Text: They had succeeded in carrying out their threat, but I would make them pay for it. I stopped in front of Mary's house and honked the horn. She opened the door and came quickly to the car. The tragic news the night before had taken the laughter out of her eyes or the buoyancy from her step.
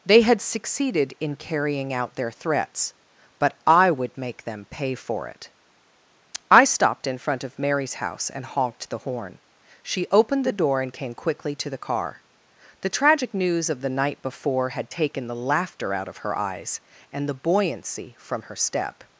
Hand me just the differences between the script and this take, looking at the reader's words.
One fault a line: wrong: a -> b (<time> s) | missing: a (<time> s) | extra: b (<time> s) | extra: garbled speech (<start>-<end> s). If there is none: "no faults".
wrong: threat -> threats (2.3 s)
extra: of (13.7 s)
wrong: or -> and (17.1 s)